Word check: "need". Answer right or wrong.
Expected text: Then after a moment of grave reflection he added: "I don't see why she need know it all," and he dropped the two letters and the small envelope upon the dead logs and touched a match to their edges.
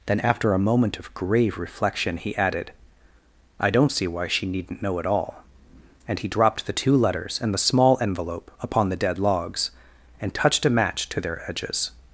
wrong